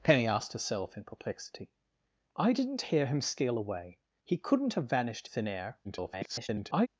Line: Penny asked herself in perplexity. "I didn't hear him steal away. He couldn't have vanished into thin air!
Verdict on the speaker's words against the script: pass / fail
fail